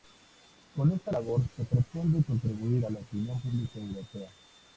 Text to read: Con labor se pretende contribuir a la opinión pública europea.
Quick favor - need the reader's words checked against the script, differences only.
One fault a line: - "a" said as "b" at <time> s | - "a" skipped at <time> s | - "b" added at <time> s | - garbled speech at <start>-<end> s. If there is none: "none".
- "esta" added at 0.9 s